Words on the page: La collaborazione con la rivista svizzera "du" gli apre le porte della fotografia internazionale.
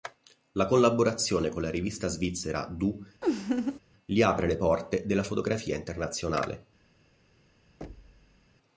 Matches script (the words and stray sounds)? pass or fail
fail